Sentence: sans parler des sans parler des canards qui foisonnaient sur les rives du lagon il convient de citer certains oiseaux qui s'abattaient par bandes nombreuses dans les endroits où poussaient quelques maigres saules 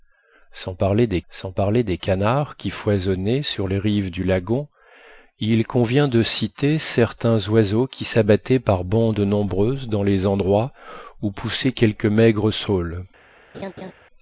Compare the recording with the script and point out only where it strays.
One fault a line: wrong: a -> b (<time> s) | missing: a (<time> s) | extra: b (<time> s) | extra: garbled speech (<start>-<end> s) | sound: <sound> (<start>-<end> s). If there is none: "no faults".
sound: laugh (13.5-13.9 s)